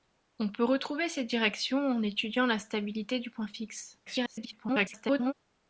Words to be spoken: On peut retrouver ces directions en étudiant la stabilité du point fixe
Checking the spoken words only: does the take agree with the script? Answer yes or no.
no